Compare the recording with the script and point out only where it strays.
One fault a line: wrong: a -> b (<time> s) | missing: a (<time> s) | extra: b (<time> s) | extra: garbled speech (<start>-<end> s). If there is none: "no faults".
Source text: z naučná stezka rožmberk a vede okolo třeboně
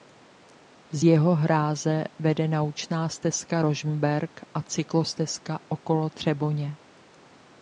extra: jeho hráze vede (1.0 s)
wrong: vede -> cyklostezka (4.6 s)